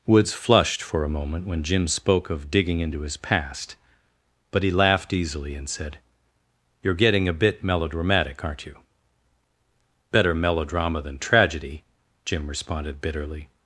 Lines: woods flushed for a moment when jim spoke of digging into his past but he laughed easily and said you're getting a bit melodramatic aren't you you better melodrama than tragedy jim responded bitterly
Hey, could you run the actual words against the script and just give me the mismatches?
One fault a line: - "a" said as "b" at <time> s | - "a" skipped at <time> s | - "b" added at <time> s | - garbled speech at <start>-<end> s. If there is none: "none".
- "you" skipped at 8.8 s